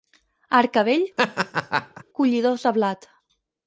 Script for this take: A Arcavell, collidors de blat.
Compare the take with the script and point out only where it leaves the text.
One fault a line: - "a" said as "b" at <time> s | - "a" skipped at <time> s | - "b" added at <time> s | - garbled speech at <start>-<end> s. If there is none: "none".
none